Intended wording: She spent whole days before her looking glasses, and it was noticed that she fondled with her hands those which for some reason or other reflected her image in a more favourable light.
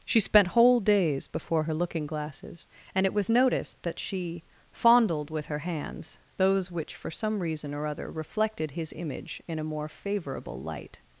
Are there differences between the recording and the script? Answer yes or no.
yes